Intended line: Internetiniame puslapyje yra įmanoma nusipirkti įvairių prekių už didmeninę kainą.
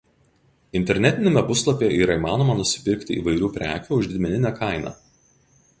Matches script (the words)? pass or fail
pass